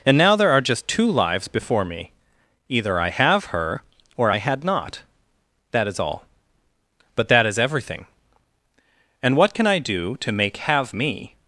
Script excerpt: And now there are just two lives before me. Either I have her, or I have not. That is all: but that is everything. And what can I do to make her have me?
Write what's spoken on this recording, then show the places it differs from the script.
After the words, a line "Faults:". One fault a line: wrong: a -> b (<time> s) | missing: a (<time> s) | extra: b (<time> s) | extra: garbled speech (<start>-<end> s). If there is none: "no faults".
And now there are just two lives before me. Either I have her, or I had not. That is all: but that is everything. And what can I do to make have me?
Faults:
wrong: have -> had (4.4 s)
missing: her (10.6 s)